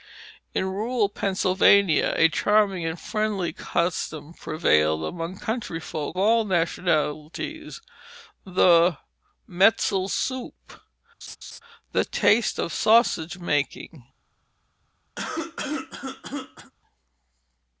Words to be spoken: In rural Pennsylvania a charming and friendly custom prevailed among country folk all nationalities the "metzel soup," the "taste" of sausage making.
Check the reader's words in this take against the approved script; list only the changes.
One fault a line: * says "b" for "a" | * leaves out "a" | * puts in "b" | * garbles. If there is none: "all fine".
all fine